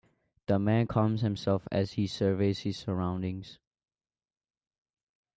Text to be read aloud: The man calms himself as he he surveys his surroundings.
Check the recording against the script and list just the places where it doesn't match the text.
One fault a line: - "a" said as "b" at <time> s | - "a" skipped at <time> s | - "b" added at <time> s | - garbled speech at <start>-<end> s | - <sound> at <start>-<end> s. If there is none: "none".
- "he" skipped at 2.1 s